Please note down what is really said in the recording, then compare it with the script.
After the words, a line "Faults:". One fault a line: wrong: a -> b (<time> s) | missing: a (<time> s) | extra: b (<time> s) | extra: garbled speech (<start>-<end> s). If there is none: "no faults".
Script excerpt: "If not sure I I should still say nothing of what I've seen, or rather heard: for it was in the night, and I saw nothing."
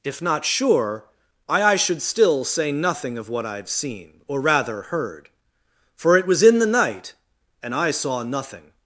"If not sure I I should still say nothing of what I've seen, or rather heard: for it was in the night, and I saw nothing."
Faults:
no faults